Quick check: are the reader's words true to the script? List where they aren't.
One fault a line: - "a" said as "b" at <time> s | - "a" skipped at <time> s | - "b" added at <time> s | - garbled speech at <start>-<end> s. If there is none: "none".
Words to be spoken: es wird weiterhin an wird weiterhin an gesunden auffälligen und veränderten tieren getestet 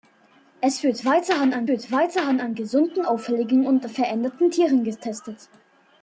none